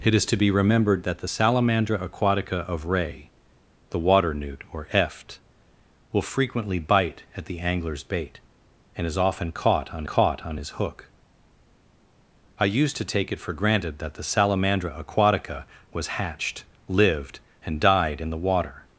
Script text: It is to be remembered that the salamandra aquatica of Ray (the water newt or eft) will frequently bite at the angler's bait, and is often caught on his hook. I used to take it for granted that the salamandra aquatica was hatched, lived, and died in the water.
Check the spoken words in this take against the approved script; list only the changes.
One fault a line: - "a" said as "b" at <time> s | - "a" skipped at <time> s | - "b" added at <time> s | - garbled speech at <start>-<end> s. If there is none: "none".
- "caught on" added at 10.0 s